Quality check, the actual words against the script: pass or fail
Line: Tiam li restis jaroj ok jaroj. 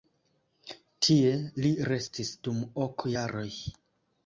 fail